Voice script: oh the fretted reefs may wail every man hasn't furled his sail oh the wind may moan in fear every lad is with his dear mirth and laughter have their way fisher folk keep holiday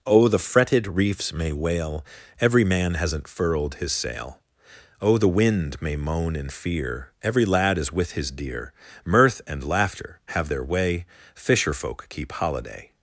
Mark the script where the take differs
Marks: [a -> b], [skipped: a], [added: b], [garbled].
oh the fretted reefs may wail every man hasn't furled his sail oh the wind may moan in fear every lad is with his dear mirth and laughter have their way fisher folk keep holiday